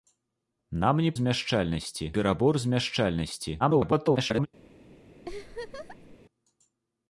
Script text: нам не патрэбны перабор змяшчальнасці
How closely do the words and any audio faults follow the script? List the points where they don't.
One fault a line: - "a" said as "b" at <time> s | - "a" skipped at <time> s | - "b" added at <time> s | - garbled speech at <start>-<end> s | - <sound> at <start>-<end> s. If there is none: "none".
- "патрэбны" said as "змяшчальнасці" at 1.2 s
- garbled speech at 3.6-4.5 s
- laugh at 5.2-6.2 s